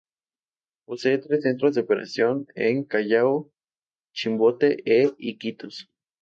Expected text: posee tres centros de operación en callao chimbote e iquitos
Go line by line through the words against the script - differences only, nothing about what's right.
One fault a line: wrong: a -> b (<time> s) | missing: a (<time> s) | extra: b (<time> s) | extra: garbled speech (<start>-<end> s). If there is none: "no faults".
no faults